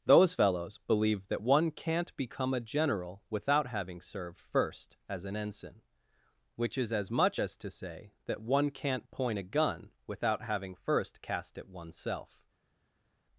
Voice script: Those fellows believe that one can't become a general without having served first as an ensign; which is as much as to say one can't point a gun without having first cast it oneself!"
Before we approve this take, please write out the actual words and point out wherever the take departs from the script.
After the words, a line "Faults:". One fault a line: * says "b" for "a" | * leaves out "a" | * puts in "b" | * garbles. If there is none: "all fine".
Those fellows believe that one can't become a general without having served first as an ensign; which is as much as to say that one can't point a gun without having first cast it oneself!"
Faults:
* puts in "that"